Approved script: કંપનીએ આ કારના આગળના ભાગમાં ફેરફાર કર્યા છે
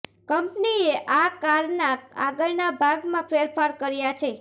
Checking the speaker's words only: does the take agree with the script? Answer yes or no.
yes